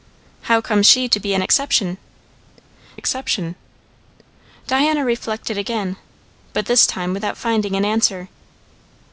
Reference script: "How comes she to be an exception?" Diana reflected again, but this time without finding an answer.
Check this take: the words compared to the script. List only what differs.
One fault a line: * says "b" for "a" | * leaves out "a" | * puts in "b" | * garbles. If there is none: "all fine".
* puts in "exception"